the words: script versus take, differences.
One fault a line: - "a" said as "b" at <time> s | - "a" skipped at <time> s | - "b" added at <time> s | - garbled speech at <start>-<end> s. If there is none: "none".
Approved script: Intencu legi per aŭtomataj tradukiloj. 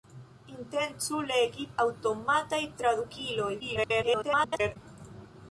- "per" skipped at 1.6 s
- garbled speech at 3.6-4.8 s